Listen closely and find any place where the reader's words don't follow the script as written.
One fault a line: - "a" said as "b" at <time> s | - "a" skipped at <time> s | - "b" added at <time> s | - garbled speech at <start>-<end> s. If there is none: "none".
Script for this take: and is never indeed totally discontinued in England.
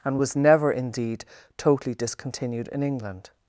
- "is" said as "was" at 0.2 s